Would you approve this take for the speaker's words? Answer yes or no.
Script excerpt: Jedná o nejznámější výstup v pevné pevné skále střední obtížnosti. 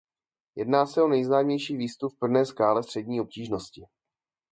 no